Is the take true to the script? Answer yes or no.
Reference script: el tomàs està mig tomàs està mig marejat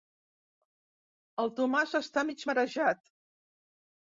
no